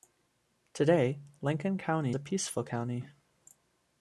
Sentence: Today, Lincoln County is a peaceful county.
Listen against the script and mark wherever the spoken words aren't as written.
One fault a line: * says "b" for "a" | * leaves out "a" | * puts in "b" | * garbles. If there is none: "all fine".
* leaves out "is"